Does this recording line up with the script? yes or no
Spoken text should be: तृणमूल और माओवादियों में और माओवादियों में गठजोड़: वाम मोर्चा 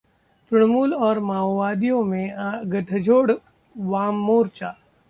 no